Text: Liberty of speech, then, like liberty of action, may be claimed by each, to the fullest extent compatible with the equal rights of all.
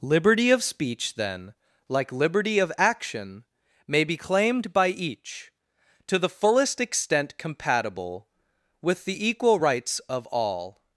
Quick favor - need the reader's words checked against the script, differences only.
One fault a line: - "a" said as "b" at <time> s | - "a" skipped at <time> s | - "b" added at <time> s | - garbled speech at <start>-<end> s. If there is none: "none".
none